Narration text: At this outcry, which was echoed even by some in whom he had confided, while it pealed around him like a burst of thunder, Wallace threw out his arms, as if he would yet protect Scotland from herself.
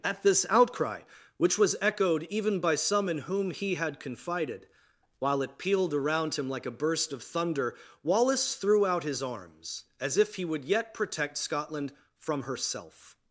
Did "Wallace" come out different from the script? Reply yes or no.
no